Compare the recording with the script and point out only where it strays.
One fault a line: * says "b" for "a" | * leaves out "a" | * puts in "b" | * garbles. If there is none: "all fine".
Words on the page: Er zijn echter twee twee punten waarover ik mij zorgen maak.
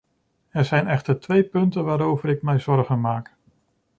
* leaves out "twee"